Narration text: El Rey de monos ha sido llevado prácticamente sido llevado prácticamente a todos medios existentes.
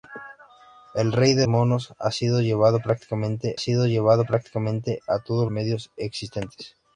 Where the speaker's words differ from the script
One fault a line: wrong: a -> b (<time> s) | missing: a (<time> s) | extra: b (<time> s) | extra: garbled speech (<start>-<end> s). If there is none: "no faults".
no faults